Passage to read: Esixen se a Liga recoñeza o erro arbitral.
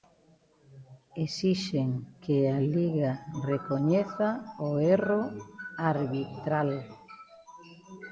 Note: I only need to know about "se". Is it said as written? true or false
false